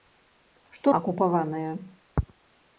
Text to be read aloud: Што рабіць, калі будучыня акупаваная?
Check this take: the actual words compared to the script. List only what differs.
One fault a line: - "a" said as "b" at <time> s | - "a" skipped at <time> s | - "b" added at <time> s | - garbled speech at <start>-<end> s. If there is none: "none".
- "рабіць калі будучыня" skipped at 0.9 s